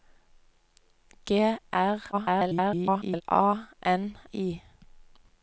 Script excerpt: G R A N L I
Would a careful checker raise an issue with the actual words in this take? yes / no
yes